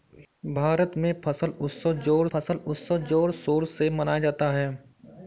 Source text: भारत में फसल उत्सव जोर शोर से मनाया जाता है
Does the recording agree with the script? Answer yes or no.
no